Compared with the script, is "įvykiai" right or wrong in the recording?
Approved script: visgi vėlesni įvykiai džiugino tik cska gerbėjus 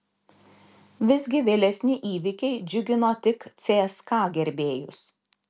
right